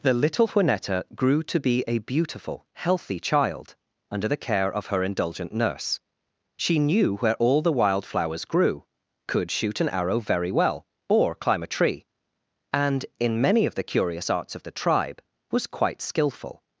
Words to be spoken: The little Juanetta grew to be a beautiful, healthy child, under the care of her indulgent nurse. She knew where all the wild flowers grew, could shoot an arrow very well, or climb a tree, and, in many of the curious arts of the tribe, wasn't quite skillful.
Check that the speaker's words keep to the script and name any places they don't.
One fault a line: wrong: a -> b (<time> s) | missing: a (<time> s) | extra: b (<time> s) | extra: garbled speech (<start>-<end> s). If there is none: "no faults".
wrong: wasn't -> was (15.5 s)